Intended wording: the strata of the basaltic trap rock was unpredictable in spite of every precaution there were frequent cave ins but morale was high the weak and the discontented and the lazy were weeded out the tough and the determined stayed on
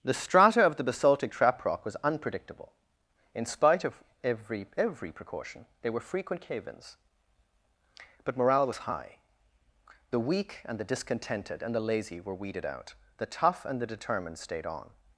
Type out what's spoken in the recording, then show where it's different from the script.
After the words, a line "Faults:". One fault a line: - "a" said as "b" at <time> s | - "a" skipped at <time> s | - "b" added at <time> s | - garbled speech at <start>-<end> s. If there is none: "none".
the strata of the basaltic trap rock was unpredictable in spite of every every precaution there were frequent cave ins but morale was high the weak and the discontented and the lazy were weeded out the tough and the determined stayed on
Faults:
- "every" added at 4.8 s